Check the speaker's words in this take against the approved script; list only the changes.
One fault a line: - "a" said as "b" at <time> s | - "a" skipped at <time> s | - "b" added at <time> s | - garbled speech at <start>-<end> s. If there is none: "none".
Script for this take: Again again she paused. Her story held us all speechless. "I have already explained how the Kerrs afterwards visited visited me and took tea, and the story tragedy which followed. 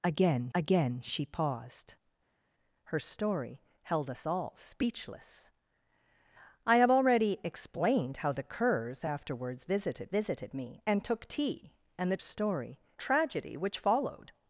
none